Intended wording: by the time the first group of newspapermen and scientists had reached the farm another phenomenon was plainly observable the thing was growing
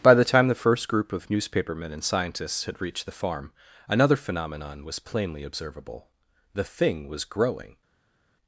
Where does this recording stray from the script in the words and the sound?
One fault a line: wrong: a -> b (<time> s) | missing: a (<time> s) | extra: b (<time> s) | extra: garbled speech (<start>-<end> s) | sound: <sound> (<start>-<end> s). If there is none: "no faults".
no faults